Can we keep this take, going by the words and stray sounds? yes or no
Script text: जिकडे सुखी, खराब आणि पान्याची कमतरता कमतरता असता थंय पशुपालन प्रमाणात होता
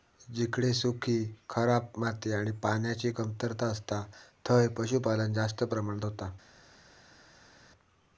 no